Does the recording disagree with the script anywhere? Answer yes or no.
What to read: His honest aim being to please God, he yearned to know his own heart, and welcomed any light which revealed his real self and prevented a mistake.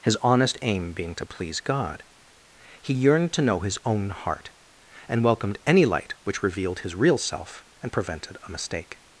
no